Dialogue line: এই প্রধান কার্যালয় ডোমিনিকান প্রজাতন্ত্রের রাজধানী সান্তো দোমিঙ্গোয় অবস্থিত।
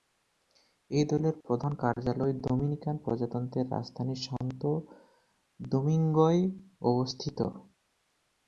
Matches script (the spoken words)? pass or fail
fail